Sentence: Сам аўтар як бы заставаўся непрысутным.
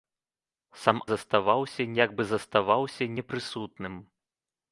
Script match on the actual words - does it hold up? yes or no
no